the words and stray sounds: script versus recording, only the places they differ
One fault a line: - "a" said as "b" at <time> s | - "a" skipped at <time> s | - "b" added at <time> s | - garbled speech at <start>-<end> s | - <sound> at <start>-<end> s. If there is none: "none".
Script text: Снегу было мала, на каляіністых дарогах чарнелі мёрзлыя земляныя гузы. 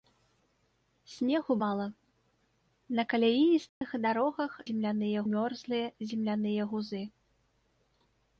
- "было" skipped at 1.5 s
- dropout at 3.7-3.8 s
- "чарнелі" said as "земляныя" at 4.7 s